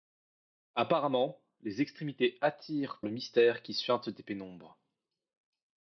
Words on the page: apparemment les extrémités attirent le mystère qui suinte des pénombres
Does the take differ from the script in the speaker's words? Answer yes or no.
no